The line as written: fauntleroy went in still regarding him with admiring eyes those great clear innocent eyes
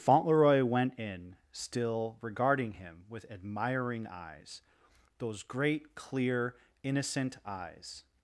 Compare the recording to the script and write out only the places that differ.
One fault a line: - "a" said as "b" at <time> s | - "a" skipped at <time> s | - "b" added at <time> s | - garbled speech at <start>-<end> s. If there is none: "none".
none